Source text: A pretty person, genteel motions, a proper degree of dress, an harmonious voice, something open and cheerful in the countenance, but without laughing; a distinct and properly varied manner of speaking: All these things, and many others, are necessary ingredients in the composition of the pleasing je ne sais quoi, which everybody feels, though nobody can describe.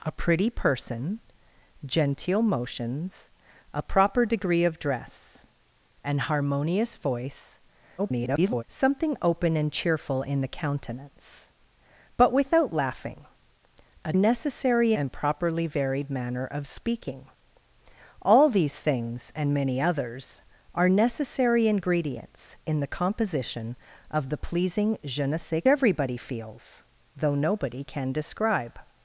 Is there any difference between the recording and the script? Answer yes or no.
yes